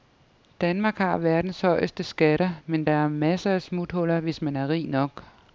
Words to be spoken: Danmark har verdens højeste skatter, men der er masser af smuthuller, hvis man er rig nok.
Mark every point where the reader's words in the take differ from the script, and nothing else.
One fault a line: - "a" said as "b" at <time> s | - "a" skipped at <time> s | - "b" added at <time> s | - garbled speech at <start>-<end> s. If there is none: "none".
none